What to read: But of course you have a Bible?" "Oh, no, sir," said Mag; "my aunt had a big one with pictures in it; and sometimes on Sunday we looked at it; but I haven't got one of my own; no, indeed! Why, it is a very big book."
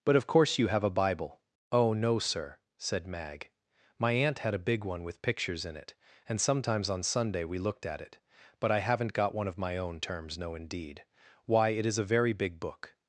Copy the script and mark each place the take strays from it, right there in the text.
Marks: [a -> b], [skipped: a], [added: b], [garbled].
But of course you have a Bible?" "Oh, no, sir," said Mag; "my aunt had a big one with pictures in it; and sometimes on Sunday we looked at it; but I haven't got one of my own; [added: terms] no, indeed! Why, it is a very big book."